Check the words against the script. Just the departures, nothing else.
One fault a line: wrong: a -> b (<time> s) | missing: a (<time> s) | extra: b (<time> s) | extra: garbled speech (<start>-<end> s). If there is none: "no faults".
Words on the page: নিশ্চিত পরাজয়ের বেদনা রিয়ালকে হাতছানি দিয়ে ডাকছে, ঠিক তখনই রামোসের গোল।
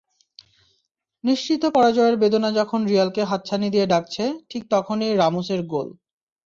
extra: যখন (2.5 s)